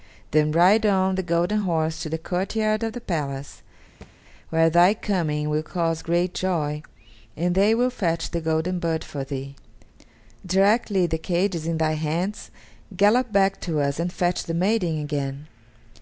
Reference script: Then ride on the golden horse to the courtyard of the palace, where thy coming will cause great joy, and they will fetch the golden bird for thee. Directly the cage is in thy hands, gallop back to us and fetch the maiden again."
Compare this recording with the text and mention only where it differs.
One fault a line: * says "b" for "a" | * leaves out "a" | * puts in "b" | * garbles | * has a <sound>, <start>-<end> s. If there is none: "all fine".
* has a thud, 4.0-4.1 s